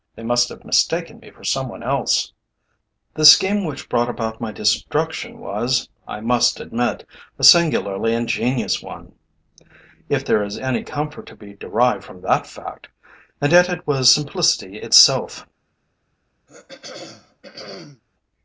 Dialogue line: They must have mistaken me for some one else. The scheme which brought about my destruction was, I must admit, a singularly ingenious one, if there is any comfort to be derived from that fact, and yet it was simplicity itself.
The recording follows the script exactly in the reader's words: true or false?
true